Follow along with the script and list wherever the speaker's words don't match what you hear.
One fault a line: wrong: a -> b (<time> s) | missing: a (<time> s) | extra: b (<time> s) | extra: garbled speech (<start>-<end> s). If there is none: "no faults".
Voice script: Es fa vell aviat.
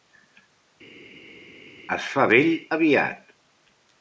no faults